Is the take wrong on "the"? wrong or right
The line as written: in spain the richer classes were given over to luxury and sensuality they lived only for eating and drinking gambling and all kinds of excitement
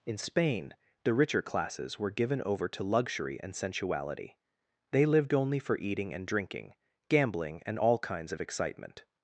right